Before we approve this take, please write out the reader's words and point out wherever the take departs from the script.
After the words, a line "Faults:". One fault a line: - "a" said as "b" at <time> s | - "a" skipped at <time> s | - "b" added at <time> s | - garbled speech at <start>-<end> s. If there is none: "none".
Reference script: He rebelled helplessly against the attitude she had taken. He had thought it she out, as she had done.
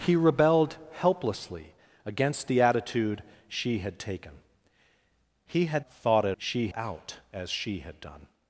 He rebelled helplessly against the attitude she had taken. He had thought it she out, as she had done.
Faults:
none